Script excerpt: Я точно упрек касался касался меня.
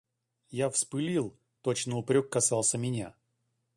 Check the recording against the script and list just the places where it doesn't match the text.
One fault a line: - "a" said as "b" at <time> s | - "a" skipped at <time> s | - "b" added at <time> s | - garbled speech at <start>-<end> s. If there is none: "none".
- "вспылил" added at 0.7 s
- "касался" skipped at 2.8 s